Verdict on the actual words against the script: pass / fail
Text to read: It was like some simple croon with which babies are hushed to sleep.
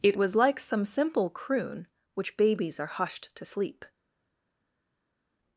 fail